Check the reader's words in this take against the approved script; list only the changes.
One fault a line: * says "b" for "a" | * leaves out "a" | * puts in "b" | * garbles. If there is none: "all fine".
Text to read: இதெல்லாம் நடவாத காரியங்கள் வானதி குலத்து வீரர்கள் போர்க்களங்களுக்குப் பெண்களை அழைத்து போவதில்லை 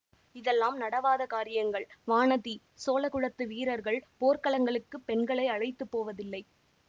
* puts in "சோழ"